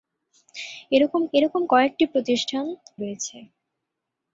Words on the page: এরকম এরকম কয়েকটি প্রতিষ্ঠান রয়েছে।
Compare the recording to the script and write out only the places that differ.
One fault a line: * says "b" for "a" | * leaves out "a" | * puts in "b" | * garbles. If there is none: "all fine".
all fine